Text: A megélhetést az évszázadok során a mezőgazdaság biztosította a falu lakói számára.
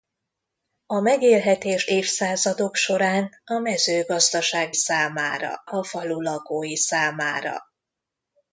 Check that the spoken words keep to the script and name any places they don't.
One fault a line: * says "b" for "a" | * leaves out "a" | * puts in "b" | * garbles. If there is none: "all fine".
* leaves out "az"
* says "számára" for "biztosította"